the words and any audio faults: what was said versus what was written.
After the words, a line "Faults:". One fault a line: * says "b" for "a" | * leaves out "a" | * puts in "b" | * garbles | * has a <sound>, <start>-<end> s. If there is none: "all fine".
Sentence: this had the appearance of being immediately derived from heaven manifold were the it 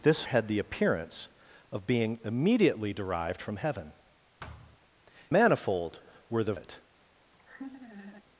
this had the appearance of being immediately derived from heaven manifold were the it
Faults:
* has a thud, 4.4-4.8 s
* has a laugh, 7.3-8.2 s